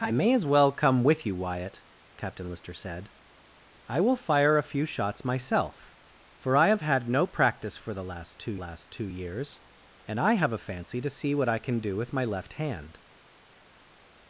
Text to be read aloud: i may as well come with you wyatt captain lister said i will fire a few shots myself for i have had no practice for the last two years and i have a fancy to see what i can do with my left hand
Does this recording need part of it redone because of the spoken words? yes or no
yes